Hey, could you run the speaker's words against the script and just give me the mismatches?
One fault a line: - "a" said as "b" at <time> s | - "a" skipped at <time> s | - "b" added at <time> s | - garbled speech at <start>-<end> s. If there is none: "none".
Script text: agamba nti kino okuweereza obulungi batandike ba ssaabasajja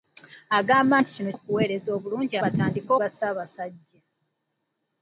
none